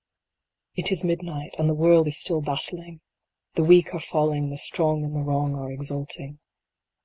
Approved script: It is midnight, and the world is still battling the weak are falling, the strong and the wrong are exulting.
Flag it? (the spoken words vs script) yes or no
no